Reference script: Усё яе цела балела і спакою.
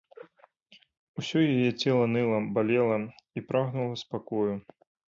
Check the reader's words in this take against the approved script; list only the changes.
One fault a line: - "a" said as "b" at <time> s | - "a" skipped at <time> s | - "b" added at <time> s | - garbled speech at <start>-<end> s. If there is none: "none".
- "ныла" added at 2.1 s
- "прагнула" added at 3.5 s